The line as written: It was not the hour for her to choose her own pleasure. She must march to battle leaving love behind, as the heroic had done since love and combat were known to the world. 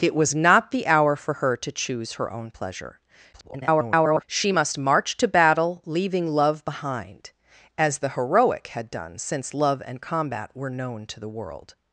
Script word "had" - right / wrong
right